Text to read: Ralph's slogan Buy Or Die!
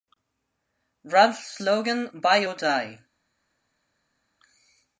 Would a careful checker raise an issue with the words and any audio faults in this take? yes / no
no